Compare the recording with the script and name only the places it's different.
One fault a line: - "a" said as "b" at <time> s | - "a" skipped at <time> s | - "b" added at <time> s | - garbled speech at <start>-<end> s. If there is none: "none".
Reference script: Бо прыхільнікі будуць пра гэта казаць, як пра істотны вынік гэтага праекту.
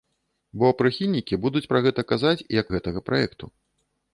- "пра істотны вынік" skipped at 2.7 s